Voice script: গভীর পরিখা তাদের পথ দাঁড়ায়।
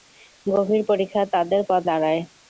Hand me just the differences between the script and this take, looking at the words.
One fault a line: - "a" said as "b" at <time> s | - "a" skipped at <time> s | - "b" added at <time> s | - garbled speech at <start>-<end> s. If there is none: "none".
none